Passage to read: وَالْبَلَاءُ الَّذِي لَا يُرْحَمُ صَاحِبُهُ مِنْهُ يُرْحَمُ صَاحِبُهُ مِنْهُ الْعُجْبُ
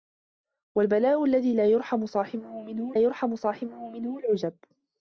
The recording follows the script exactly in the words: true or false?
true